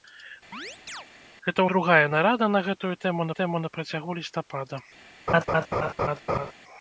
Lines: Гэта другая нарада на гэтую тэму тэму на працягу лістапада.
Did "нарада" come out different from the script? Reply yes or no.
no